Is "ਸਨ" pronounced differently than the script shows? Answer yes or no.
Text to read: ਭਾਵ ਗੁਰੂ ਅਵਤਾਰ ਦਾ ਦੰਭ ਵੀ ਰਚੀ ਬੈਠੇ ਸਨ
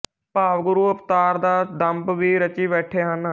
yes